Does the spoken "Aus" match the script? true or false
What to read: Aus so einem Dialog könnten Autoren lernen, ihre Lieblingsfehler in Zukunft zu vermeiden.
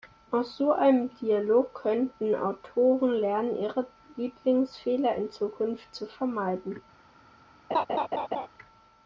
true